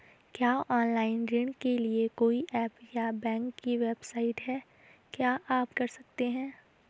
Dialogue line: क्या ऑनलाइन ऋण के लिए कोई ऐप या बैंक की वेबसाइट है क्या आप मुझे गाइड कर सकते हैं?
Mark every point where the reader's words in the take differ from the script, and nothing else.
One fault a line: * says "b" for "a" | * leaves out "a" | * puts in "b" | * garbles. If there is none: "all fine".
* leaves out "मुझे गाइड"